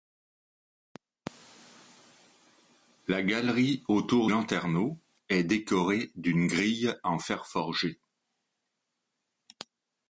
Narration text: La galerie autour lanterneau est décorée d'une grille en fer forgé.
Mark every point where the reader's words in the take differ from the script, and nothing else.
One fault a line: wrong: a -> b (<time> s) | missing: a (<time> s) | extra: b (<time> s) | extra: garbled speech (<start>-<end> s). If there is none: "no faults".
no faults